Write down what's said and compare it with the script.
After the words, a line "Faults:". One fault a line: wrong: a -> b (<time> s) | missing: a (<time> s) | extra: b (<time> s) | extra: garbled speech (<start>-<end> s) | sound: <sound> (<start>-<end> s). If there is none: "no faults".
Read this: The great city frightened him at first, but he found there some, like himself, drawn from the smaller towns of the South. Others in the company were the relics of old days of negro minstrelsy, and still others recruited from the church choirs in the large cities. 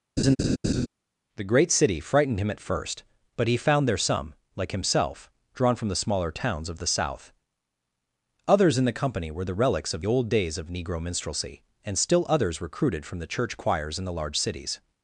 The great city frightened him at first, but he found there some, like himself, drawn from the smaller towns of the South. Others in the company were the relics of old days of negro minstrelsy, and still others recruited from the church choirs in the large cities.
Faults:
sound: laugh (0.2-0.9 s)